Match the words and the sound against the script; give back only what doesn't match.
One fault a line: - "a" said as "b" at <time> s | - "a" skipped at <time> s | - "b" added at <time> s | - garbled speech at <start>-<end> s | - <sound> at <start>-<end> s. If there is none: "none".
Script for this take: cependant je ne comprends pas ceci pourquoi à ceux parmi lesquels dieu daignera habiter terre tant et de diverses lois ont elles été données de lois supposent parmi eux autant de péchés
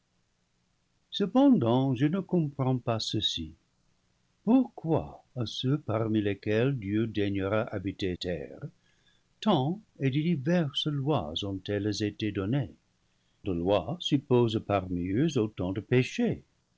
none